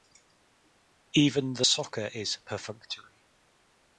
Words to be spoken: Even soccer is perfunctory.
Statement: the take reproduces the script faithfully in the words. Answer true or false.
false